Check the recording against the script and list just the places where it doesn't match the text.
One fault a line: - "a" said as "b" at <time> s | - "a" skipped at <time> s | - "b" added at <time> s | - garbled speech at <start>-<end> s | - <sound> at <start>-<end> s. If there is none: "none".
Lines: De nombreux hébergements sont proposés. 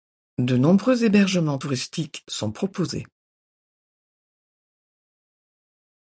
- "touristiques" added at 1.5 s